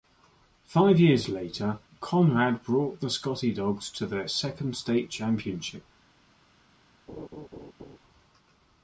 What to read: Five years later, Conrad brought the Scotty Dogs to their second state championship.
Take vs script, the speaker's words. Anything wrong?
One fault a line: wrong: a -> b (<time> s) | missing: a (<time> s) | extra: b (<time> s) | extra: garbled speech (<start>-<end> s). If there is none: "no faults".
no faults